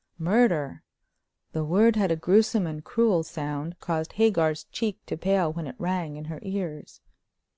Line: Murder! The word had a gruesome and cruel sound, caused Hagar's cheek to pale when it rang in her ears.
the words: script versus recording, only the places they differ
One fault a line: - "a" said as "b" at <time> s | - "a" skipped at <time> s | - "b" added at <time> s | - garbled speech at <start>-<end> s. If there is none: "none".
none